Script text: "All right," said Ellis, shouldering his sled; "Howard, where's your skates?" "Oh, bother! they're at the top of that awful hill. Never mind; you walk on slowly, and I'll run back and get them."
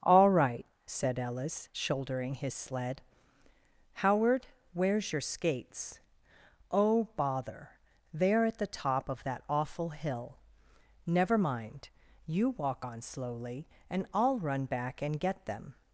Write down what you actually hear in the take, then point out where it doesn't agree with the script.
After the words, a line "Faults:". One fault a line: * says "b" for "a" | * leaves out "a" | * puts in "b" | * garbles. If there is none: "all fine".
"All right," said Ellis, shouldering his sled; "Howard, where's your skates?" "Oh, bother! they're at the top of that awful hill. Never mind; you walk on slowly, and I'll run back and get them."
Faults:
all fine